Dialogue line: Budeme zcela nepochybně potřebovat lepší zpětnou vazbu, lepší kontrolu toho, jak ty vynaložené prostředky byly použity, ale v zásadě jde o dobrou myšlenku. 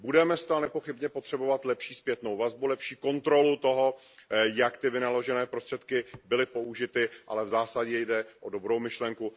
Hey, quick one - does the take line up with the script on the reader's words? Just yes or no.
yes